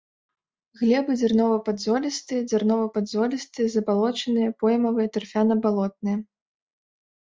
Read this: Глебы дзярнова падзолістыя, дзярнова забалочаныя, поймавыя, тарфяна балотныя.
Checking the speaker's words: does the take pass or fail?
fail